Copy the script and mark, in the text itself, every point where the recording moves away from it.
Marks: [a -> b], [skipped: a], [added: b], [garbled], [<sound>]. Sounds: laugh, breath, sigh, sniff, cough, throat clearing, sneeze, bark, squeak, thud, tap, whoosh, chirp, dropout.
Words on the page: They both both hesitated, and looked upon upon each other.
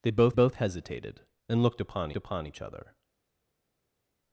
They both both hesitated, and looked upon upon each other.